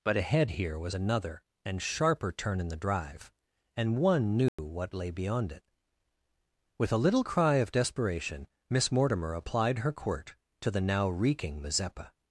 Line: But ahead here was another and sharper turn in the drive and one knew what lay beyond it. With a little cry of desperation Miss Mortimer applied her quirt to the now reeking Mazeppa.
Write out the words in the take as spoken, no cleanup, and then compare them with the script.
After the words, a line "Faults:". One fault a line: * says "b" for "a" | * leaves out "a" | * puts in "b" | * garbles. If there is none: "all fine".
But ahead here was another and sharper turn in the drive and one knew what lay beyond it. With a little cry of desperation Miss Mortimer applied her quirt to the now reeking Mazeppa.
Faults:
all fine